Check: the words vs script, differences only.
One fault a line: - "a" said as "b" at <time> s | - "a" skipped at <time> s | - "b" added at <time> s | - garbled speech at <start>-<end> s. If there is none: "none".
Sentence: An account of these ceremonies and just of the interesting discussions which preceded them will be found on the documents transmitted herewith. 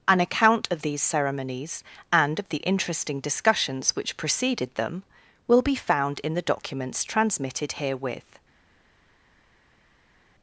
- "just" skipped at 2.4 s
- "on" said as "in" at 6.2 s